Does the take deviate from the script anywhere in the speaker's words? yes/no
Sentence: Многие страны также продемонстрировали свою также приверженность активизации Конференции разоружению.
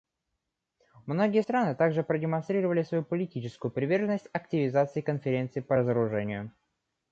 yes